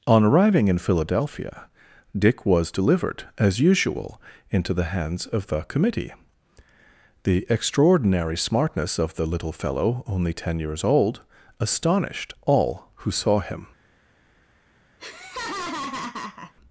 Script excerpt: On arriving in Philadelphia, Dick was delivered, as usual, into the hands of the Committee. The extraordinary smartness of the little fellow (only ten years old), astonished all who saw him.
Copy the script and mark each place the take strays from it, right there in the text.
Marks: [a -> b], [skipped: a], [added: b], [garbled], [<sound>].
On arriving in Philadelphia, Dick was delivered, as usual, into the hands of the Committee. The extraordinary smartness of the little fellow (only ten years old), astonished all who saw him. [laugh]